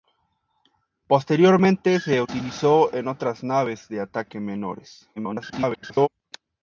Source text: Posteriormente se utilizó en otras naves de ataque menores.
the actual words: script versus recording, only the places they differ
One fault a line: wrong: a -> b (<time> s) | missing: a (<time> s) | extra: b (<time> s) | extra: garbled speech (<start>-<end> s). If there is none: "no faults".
extra: garbled speech (5.2-6.1 s)